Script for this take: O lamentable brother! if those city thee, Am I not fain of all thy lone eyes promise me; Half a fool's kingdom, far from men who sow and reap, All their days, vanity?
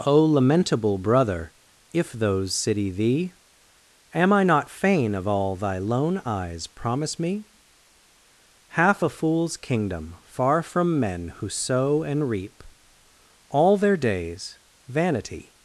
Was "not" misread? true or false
false